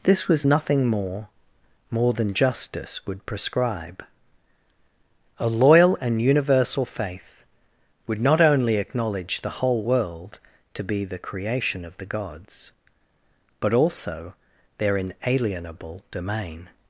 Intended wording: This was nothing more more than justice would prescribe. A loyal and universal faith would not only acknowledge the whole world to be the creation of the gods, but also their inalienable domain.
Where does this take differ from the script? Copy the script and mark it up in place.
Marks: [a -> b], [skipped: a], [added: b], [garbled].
This was nothing more more than justice would prescribe. A loyal and universal faith would not only acknowledge the whole world to be the creation of the gods, but also their inalienable domain.